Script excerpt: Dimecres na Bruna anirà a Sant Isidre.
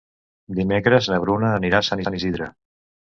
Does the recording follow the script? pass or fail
fail